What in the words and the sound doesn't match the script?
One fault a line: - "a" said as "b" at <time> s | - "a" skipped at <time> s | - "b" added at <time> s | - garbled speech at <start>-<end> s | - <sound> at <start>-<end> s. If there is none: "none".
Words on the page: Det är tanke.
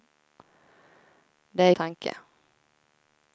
none